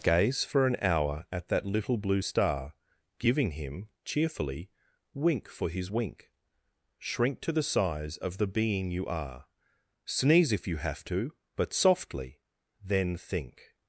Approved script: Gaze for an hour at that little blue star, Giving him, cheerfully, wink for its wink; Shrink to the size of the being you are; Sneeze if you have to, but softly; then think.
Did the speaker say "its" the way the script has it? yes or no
no